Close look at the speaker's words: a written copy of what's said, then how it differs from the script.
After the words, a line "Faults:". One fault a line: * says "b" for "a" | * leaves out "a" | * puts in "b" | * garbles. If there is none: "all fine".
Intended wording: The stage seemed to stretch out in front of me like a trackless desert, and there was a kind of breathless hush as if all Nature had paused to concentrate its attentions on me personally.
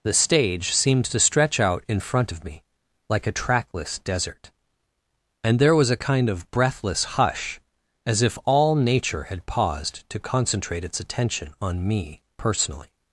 The stage seemed to stretch out in front of me like a trackless desert, and there was a kind of breathless hush as if all Nature had paused to concentrate its attention on me personally.
Faults:
* says "attention" for "attentions"